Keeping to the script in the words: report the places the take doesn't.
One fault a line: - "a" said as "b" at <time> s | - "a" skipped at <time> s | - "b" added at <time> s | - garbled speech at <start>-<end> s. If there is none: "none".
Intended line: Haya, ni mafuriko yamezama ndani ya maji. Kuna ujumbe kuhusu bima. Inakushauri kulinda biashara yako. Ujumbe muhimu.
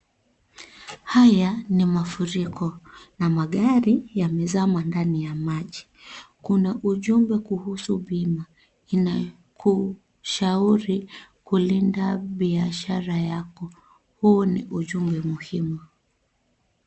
- "na magari" added at 3.2 s
- "Huu ni" added at 14.2 s